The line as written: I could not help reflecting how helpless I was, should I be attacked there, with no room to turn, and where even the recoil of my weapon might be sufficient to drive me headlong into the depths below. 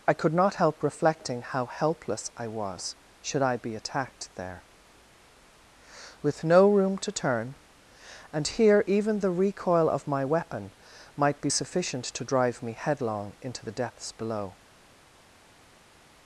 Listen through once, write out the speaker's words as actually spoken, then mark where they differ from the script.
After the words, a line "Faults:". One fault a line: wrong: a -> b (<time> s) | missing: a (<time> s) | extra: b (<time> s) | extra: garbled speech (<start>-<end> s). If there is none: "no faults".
I could not help reflecting how helpless I was, should I be attacked there, with no room to turn, and here even the recoil of my weapon might be sufficient to drive me headlong into the depths below.
Faults:
wrong: where -> here (8.5 s)